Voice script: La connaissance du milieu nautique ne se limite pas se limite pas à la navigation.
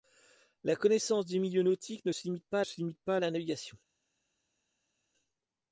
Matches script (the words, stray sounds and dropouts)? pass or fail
pass